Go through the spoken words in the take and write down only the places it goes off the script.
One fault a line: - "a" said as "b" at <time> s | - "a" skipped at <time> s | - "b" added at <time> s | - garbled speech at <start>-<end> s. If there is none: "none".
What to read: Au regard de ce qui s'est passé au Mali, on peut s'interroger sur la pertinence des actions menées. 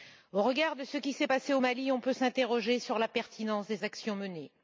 none